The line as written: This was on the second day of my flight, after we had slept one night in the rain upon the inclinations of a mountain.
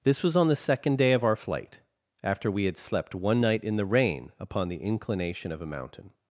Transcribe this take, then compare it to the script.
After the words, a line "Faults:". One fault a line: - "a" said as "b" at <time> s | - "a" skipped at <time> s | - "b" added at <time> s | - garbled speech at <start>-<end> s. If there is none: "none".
This was on the second day of our flight, after we had slept one night in the rain upon the inclination of a mountain.
Faults:
- "my" said as "our" at 1.2 s
- "inclinations" said as "inclination" at 4.8 s